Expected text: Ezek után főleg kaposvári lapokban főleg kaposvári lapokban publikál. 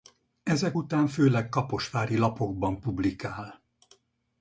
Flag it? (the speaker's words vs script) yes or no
yes